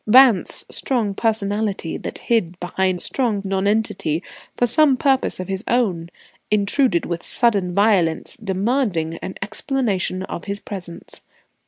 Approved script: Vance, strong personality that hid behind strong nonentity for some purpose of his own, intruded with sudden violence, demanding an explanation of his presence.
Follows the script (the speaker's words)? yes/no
yes